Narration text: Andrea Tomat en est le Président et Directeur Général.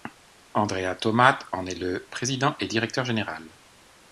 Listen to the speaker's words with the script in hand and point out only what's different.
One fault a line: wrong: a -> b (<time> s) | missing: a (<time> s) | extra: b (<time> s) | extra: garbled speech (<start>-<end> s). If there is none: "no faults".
no faults